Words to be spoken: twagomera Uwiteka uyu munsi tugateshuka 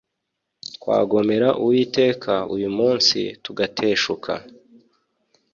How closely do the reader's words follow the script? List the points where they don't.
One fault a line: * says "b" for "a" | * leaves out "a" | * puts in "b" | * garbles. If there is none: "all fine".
all fine